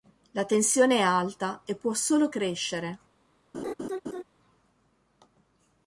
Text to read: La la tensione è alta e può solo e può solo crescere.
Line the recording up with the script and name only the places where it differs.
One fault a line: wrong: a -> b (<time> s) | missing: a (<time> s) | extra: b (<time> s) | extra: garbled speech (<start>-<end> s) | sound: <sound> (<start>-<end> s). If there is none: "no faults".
missing: la (0.5 s)
missing: e può solo (2.3 s)
sound: laugh (3.5-4.2 s)